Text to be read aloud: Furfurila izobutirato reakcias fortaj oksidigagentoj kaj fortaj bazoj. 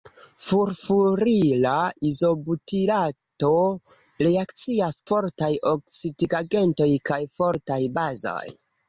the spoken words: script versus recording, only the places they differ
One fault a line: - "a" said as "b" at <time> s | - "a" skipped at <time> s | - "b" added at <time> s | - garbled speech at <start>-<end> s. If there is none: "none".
none